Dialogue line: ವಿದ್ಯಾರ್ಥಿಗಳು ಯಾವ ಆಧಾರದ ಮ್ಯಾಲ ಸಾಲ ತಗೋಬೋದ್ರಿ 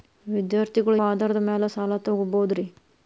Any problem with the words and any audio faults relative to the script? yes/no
yes